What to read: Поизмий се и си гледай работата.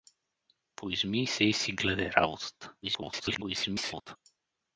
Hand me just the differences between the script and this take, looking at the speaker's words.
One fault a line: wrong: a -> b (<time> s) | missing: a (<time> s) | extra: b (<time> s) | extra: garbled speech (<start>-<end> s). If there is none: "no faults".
extra: garbled speech (2.8-4.2 s)